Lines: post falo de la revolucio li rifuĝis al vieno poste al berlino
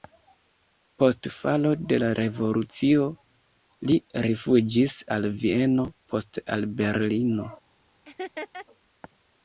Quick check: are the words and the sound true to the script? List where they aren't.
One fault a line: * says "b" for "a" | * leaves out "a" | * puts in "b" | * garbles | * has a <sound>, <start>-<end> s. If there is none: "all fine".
* has a laugh, 8.0-8.7 s